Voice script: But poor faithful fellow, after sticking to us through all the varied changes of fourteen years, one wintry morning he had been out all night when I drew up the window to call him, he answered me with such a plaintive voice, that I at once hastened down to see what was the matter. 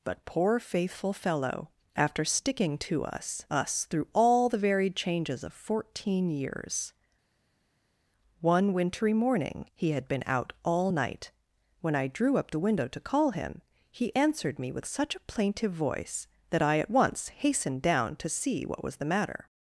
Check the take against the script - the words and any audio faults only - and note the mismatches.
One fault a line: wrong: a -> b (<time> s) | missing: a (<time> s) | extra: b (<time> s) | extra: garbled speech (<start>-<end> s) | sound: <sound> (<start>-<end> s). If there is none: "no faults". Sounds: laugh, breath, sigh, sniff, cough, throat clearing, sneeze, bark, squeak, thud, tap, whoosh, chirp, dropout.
extra: us (3.5 s)